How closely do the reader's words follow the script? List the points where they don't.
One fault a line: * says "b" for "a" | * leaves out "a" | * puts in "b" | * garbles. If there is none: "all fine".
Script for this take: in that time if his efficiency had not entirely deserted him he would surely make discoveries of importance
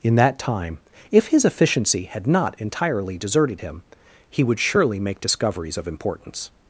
all fine